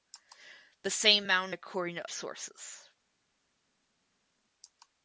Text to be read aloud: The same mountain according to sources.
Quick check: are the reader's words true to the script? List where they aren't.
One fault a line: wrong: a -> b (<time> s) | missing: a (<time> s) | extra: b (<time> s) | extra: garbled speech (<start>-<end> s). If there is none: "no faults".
no faults